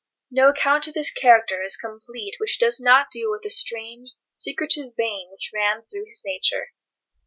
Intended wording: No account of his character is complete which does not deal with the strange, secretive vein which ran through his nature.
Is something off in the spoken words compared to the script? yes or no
no